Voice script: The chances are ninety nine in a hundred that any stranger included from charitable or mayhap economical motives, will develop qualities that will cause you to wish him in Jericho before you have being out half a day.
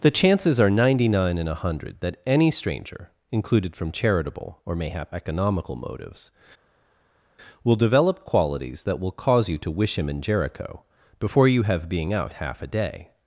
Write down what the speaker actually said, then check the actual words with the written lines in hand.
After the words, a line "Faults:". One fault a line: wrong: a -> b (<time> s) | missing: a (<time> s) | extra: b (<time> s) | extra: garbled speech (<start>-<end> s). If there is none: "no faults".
The chances are ninety nine in a hundred that any stranger included from charitable or mayhap economical motives, will develop qualities that will cause you to wish him in Jericho before you have being out half a day.
Faults:
no faults